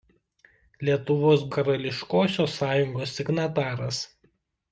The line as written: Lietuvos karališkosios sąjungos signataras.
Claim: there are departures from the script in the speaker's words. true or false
false